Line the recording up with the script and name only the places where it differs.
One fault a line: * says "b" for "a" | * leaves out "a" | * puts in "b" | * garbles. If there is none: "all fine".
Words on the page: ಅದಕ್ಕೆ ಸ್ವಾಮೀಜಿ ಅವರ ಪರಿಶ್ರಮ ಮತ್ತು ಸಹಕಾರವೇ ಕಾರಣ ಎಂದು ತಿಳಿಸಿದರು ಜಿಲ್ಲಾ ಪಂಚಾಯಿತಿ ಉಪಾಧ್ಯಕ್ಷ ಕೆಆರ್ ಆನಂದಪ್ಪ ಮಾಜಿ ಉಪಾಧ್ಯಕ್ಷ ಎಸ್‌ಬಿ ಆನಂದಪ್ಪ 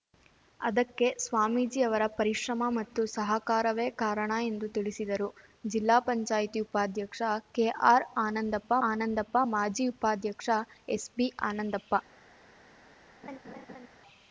* puts in "ಆನಂದಪ್ಪ"